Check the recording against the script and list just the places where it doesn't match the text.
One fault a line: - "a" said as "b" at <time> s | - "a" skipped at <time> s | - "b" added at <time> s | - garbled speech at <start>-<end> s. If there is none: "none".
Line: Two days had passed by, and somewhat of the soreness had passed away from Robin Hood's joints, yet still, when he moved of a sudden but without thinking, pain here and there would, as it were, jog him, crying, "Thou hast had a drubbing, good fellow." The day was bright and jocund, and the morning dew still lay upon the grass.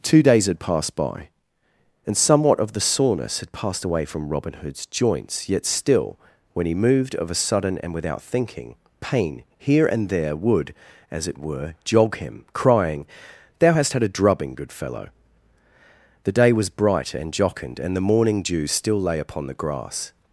- "but" said as "and" at 7.8 s